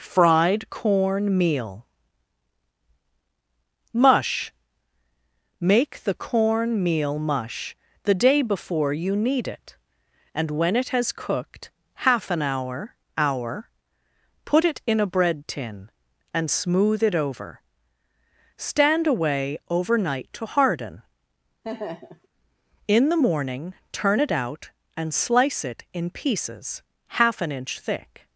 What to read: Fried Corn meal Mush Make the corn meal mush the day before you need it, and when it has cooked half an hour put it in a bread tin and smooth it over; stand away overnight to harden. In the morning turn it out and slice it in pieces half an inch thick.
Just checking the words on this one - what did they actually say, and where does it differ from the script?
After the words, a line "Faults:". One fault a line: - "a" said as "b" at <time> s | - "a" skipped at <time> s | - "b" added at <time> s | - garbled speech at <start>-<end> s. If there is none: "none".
Fried Corn meal Mush Make the corn meal mush the day before you need it, and when it has cooked half an hour hour put it in a bread tin and smooth it over; stand away overnight to harden. In the morning turn it out and slice it in pieces half an inch thick.
Faults:
- "hour" added at 13.2 s